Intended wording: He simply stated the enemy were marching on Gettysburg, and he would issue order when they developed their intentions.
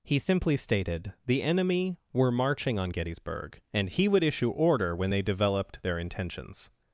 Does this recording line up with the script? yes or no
yes